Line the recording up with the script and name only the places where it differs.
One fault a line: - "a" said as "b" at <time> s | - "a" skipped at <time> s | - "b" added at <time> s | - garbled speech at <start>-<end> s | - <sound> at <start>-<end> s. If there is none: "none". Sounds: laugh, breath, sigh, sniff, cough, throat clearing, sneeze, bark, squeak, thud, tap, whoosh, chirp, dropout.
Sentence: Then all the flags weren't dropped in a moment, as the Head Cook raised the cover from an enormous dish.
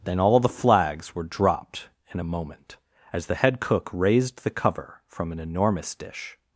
- "weren't" said as "were" at 1.1 s